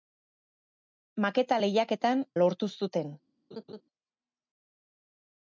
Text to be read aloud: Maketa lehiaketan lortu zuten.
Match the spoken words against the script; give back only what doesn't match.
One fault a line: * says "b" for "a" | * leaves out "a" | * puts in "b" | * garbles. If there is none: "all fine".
all fine